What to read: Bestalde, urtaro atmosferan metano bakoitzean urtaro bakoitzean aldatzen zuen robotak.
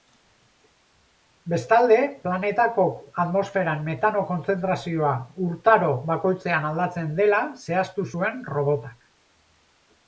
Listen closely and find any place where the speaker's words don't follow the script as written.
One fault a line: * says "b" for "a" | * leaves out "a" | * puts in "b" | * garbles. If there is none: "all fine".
* says "planetako" for "urtaro"
* says "kontzentrazioa" for "bakoitzean"
* puts in "dela zehaztu"